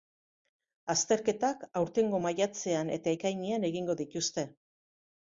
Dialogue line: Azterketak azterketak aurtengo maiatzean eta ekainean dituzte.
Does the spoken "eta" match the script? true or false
true